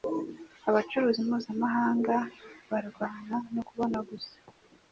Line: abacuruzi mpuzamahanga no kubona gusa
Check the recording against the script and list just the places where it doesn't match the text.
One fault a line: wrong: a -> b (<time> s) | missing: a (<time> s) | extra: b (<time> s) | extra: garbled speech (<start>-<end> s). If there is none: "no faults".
extra: barwana (2.7 s)